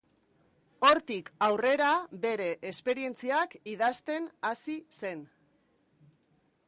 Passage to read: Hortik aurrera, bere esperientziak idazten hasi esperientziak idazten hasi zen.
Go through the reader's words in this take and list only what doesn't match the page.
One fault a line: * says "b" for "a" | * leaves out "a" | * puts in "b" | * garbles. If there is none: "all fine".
* leaves out "esperientziak idazten hasi"